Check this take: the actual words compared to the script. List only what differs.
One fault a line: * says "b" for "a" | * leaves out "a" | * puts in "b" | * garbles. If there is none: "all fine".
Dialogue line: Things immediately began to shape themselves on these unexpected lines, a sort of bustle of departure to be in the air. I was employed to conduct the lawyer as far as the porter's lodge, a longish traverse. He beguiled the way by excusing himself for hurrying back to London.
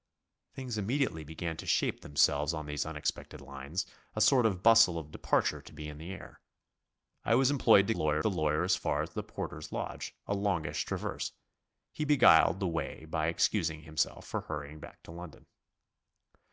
* says "lawyer" for "conduct"